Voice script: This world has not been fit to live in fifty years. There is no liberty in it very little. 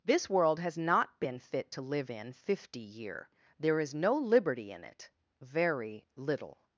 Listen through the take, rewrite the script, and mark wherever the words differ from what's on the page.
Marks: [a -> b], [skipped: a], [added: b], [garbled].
This world has not been fit to live in fifty [years. -> year] There is no liberty in it very little.